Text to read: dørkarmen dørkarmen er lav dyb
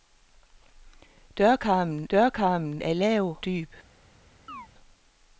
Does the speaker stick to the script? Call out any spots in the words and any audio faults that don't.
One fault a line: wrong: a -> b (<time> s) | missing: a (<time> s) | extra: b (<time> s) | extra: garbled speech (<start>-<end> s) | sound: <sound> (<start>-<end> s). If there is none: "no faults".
sound: chirp (4.5-4.7 s)